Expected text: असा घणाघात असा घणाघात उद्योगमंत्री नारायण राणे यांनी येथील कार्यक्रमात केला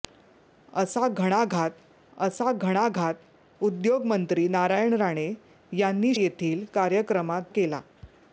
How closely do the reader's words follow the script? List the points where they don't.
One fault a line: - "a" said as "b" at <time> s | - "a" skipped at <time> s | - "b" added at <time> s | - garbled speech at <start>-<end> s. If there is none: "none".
none